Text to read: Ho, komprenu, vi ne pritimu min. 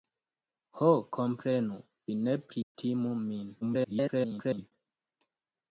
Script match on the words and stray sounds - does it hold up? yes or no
no